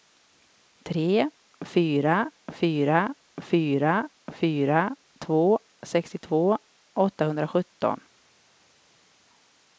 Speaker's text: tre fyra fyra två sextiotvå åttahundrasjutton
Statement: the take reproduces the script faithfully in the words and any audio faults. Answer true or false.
false